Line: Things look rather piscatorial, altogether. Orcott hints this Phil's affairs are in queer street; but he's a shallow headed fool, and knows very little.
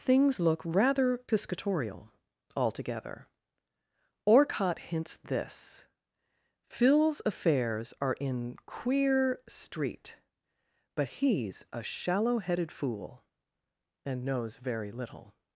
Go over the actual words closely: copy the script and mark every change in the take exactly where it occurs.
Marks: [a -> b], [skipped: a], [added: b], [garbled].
Things look rather piscatorial, altogether. Orcott hints this Phil's affairs are in queer street; but he's a shallow headed fool, and knows very little.